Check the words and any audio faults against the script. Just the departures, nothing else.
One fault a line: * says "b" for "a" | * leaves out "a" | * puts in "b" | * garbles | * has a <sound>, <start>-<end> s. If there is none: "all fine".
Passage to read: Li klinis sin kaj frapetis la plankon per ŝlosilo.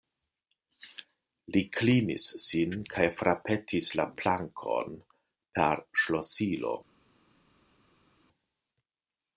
all fine